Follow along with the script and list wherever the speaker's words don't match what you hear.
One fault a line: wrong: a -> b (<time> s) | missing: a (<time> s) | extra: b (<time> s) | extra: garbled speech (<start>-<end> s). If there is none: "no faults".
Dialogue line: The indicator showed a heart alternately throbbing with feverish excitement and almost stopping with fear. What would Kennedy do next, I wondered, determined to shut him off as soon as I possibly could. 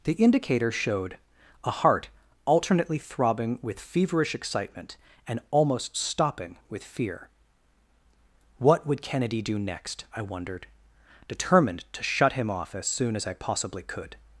no faults